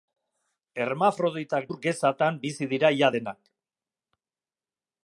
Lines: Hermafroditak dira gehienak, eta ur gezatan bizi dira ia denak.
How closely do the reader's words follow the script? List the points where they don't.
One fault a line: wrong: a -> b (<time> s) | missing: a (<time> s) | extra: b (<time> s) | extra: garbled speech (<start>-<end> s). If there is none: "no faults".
missing: dira gehienak eta (1.7 s)